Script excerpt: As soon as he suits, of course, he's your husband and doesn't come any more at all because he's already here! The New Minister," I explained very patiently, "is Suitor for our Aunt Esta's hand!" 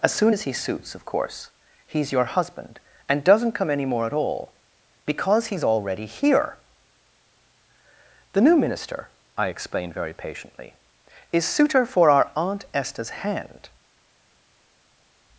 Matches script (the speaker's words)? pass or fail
pass